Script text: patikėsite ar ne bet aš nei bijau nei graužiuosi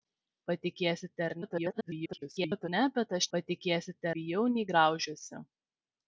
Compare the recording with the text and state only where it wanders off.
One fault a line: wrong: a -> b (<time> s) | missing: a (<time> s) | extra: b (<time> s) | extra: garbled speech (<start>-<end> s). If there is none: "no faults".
extra: garbled speech (1.4-2.7 s)
wrong: nei -> patikėsite (3.4 s)